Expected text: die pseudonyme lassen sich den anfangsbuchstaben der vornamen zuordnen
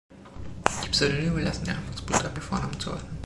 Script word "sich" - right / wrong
wrong